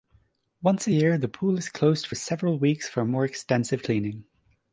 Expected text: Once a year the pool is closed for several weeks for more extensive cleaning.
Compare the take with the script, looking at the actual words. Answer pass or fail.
pass